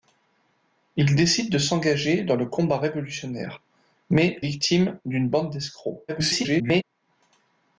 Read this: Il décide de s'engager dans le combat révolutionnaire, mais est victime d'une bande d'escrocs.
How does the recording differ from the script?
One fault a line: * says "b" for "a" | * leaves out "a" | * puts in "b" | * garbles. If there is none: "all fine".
* leaves out "est"
* garbles